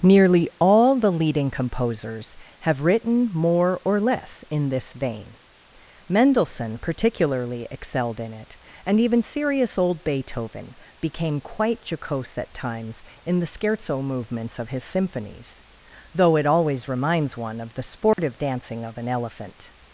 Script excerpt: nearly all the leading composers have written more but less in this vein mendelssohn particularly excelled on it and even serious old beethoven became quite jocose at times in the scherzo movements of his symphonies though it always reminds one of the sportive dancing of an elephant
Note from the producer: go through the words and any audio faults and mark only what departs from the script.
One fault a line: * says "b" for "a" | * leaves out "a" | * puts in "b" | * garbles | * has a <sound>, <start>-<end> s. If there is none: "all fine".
* says "or" for "but"
* says "in" for "on"
* has a dropout, 18.1-18.2 s